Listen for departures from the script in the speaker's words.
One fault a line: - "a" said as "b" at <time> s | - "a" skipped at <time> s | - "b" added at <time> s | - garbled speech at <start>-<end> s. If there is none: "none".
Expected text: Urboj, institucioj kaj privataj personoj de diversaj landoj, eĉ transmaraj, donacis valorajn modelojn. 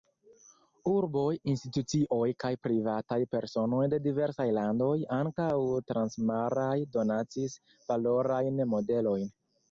- "eĉ" said as "ankaŭ" at 5.2 s